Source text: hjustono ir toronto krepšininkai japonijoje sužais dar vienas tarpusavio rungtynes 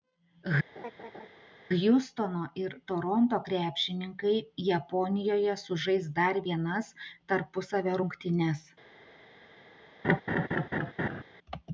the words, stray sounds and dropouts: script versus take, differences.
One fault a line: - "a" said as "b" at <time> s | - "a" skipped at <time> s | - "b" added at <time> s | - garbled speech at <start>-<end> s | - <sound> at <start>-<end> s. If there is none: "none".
- laugh at 0.8-1.3 s
- laugh at 10.0-11.2 s